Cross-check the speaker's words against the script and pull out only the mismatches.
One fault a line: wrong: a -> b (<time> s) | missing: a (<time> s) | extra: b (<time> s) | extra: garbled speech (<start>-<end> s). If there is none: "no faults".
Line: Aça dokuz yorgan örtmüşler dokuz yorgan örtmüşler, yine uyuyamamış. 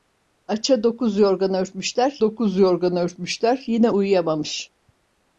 no faults